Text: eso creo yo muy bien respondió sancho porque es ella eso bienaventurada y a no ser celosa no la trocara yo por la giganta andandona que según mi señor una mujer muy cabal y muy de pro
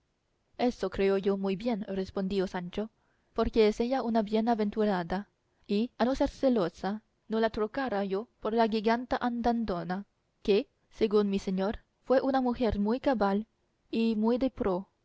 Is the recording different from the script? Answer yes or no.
yes